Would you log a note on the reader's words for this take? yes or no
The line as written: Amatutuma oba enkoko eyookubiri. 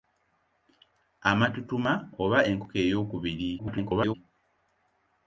yes